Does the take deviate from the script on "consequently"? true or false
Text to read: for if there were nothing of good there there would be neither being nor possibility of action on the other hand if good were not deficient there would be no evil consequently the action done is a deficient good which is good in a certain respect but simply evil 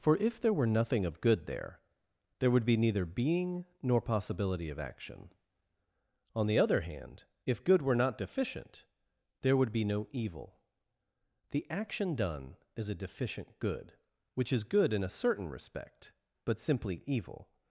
true